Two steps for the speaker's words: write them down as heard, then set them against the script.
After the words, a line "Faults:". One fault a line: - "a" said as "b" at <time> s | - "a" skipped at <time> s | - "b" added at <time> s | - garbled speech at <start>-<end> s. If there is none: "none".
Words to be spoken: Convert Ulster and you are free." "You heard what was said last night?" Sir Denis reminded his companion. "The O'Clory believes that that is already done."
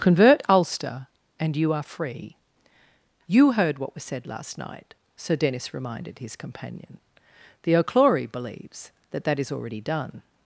Convert Ulster and you are free." "You heard what was said last night?" Sir Denis reminded his companion. "The O'Clory believes that that is already done."
Faults:
none